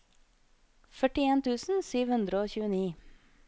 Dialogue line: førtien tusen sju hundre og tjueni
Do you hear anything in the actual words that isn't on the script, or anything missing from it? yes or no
no